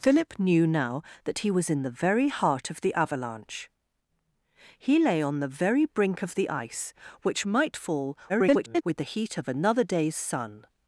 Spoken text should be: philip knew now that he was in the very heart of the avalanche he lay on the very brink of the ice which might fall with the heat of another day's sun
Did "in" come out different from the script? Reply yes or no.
no